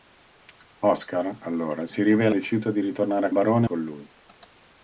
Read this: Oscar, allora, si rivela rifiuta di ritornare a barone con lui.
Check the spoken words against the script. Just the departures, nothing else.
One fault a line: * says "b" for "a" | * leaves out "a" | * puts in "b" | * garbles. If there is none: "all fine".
all fine